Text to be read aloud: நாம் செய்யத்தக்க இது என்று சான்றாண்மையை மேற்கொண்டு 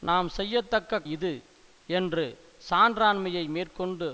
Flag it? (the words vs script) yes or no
no